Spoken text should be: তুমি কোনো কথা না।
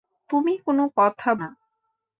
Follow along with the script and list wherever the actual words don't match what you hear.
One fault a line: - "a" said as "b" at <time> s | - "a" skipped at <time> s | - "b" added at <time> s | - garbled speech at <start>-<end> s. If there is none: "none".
none